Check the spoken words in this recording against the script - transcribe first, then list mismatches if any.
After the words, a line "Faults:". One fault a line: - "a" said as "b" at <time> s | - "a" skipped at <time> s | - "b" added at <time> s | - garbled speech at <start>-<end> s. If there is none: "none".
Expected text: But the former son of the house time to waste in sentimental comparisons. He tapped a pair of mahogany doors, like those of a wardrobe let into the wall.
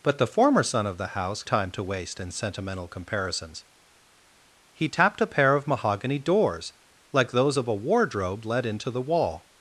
But the former son of the house time to waste in sentimental comparisons. He tapped a pair of mahogany doors, like those of a wardrobe let into the wall.
Faults:
none